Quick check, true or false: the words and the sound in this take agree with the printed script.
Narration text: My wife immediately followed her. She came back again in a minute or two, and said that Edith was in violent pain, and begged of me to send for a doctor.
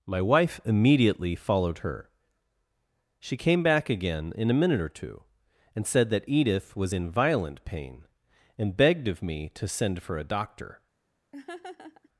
false